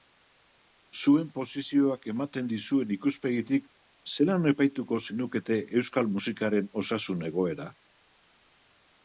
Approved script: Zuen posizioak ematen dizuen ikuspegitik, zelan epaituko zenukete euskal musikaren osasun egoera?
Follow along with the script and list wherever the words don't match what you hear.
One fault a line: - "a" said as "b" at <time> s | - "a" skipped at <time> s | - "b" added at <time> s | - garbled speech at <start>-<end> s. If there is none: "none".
none